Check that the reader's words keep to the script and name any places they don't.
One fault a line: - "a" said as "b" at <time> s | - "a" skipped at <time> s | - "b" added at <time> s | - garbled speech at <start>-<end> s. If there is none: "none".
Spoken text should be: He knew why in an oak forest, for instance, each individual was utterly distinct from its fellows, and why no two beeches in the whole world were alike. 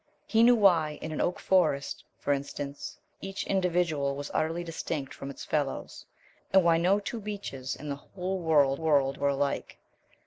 - "world" added at 8.8 s